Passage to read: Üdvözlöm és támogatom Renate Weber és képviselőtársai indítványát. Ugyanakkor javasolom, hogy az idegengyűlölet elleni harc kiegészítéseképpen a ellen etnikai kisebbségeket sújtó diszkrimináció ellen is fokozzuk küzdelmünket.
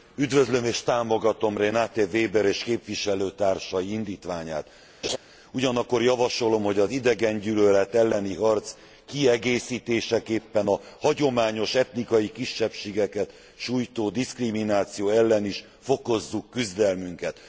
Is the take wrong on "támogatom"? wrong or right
right